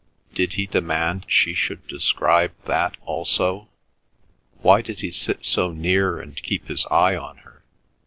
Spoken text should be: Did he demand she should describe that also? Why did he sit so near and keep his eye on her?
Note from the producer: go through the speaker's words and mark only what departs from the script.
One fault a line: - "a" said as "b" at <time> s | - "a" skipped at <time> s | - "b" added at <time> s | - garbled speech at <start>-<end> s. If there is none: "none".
none